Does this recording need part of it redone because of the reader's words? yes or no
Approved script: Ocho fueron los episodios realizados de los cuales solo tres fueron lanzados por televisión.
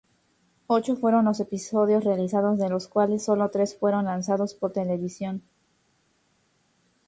no